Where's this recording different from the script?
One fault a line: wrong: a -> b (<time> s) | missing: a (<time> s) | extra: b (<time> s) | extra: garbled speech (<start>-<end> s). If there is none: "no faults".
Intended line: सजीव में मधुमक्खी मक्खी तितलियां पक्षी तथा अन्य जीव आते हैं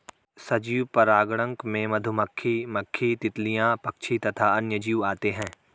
extra: परागणक (0.9 s)